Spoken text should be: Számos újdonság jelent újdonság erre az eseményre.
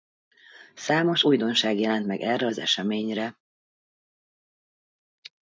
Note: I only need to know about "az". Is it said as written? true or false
true